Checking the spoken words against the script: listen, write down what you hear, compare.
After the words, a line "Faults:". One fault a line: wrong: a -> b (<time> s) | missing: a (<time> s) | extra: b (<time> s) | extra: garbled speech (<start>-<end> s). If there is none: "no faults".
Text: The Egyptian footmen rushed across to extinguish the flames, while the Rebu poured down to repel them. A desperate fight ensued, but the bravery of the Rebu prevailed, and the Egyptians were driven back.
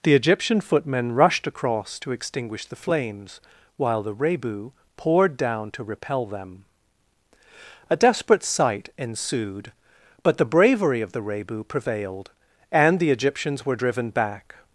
The Egyptian footmen rushed across to extinguish the flames, while the Rebu poured down to repel them. A desperate sight ensued, but the bravery of the Rebu prevailed, and the Egyptians were driven back.
Faults:
wrong: fight -> sight (8.4 s)